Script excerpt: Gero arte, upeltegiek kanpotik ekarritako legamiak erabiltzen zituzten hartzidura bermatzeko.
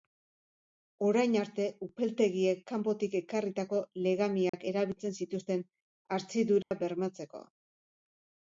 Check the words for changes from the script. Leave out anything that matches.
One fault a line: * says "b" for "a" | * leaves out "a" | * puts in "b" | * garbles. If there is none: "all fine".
* says "Orain" for "Gero"